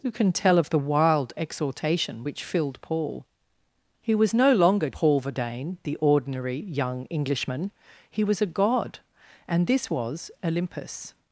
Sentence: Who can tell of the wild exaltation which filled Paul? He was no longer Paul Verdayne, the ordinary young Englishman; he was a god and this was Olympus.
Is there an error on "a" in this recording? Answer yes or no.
no